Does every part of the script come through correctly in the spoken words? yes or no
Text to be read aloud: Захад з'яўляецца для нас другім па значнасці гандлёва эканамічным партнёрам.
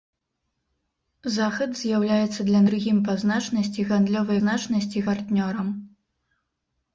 no